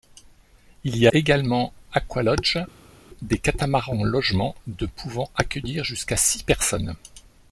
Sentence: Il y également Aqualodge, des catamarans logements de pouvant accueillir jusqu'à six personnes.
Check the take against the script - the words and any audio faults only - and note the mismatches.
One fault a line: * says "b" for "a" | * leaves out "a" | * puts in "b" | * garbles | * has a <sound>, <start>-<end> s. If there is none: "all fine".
all fine